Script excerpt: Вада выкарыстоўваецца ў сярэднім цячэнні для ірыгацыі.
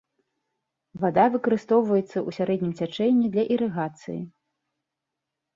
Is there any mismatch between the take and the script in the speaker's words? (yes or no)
no